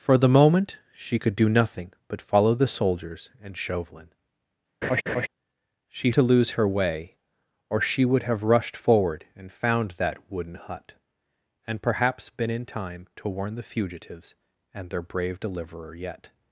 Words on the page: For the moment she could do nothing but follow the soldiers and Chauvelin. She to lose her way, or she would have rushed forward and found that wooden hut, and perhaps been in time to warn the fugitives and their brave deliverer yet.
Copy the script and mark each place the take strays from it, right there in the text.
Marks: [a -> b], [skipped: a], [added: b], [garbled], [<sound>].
For the moment she could do nothing but follow the soldiers and Chauvelin. [laugh] She to lose her way, or she would have rushed forward and found that wooden hut, and perhaps been in time to warn the fugitives and their brave deliverer yet.